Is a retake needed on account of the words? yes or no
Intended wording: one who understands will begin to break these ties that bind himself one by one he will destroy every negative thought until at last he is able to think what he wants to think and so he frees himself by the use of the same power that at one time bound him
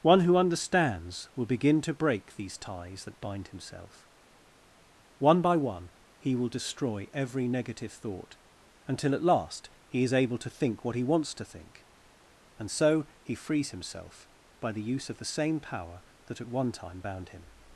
no